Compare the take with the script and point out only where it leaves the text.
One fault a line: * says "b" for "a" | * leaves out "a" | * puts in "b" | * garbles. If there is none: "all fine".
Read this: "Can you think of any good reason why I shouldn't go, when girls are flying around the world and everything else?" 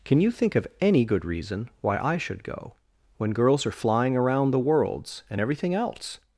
* says "should" for "shouldn't"
* says "worlds" for "world"